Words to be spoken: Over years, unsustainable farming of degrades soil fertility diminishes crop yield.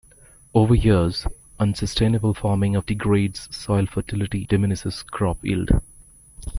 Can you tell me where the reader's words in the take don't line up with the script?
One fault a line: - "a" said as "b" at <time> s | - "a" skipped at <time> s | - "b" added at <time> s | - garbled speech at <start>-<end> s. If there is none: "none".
none